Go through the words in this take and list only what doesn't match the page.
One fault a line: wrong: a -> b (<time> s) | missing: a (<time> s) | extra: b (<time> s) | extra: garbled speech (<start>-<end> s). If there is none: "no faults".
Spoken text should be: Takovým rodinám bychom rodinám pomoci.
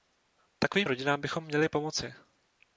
wrong: rodinám -> měli (1.4 s)